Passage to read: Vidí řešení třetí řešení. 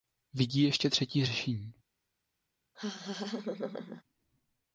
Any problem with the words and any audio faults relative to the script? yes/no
yes